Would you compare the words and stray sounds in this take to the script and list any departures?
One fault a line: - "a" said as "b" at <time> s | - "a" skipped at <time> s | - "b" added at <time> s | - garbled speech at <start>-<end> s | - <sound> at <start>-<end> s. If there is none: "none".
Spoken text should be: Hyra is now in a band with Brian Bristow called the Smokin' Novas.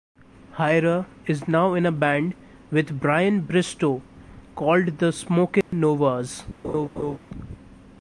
- dropout at 5.6-5.7 s
- laugh at 6.6-7.2 s